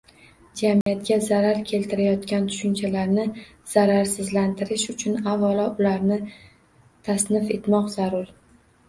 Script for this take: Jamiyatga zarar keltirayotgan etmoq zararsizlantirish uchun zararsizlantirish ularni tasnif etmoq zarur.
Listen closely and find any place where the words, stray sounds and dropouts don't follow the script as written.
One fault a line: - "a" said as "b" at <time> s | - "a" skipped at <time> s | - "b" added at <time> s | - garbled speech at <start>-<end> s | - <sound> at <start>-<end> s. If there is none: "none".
- dropout at 0.8-0.9 s
- "etmoq" said as "tushunchalarni" at 2.5 s
- "zararsizlantirish" said as "avvalo" at 5.3 s